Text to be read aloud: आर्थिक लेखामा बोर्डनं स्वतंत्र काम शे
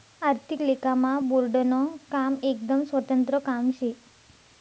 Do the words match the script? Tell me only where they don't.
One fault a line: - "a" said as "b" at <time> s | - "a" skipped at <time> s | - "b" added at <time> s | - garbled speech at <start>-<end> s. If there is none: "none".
- "काम एकदम" added at 2.1 s